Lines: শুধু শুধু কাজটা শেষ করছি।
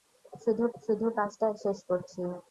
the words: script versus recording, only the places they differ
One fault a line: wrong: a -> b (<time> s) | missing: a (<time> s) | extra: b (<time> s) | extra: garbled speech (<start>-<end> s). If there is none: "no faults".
no faults